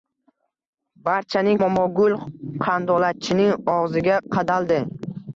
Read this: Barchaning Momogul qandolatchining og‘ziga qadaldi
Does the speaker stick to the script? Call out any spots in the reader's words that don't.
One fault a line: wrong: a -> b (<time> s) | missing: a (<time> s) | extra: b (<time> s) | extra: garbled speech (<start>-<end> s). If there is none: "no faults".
no faults